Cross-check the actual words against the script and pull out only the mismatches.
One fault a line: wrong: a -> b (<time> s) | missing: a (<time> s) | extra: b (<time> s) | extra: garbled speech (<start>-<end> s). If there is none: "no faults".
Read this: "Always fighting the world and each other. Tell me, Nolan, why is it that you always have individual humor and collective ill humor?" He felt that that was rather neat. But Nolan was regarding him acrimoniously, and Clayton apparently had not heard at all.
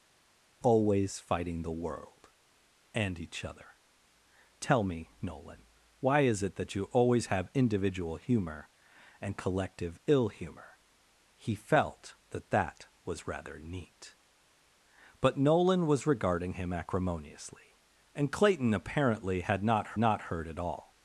extra: not (20.0 s)